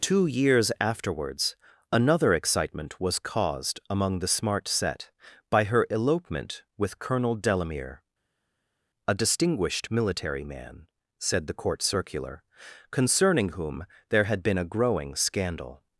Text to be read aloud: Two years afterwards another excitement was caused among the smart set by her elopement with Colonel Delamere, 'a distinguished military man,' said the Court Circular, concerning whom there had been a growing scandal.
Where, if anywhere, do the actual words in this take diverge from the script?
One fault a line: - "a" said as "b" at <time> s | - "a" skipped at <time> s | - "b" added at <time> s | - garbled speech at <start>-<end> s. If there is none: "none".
none